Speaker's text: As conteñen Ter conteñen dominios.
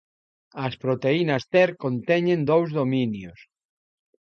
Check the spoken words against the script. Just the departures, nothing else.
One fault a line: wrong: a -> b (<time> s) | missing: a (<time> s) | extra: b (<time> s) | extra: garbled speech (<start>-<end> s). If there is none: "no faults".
wrong: conteñen -> proteínas (0.8 s)
extra: dous (2.5 s)